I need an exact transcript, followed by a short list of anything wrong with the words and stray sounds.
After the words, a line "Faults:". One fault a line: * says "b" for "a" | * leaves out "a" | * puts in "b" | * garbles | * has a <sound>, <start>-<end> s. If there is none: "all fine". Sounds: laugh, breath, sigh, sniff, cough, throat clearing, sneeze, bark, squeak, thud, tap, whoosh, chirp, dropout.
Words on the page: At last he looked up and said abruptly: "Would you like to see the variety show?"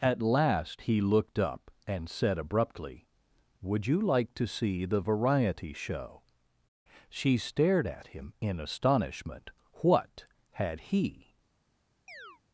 At last he looked up and said abruptly: "Would you like to see the variety show?" She stared at him in astonishment. What had he
Faults:
* puts in "She stared at him in astonishment What had he"
* has a chirp, 12.1-12.4 s